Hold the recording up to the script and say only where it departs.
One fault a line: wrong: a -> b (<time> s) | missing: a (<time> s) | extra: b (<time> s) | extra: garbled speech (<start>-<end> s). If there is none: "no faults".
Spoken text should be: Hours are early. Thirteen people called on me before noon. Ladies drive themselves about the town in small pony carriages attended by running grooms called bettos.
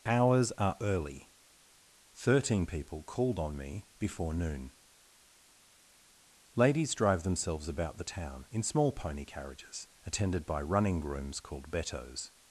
no faults